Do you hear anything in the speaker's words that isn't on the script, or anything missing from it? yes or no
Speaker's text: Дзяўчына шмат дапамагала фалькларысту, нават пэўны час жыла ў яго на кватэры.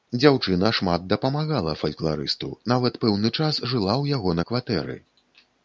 no